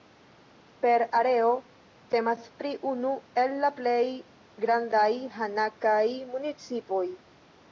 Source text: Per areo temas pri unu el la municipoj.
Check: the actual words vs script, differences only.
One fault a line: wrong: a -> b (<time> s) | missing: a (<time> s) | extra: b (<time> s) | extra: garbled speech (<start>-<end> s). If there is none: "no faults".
extra: plej grandaj hanakaj (3.8 s)